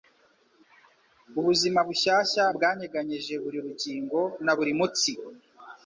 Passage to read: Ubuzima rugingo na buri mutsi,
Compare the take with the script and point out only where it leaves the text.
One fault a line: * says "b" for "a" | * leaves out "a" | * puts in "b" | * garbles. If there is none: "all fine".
* puts in "bushyashya bwanyeganyeje buri"